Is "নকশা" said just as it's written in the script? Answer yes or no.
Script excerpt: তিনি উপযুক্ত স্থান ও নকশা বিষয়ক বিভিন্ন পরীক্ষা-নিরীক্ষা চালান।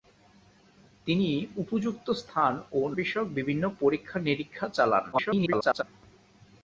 no